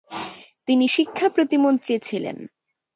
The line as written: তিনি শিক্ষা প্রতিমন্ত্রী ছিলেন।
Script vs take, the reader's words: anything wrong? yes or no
no